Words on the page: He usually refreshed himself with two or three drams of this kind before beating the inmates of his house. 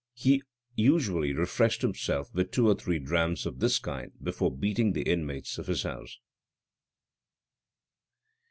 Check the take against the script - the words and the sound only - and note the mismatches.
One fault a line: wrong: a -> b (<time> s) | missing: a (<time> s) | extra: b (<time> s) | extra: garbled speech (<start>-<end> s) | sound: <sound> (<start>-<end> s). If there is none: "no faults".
no faults